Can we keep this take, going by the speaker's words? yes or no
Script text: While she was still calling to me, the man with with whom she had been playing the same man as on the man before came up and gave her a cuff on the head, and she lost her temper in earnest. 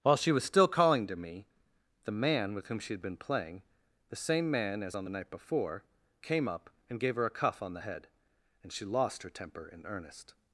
no